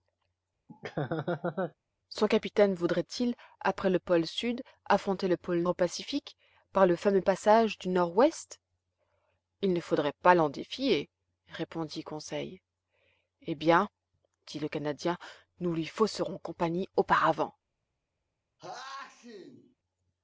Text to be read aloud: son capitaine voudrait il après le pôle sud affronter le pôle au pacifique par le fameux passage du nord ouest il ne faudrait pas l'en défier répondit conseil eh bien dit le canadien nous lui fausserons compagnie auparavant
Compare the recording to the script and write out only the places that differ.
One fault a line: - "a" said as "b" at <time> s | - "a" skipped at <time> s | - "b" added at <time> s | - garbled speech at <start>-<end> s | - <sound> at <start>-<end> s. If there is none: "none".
- laugh at 0.7-1.7 s
- sneeze at 18.6-19.8 s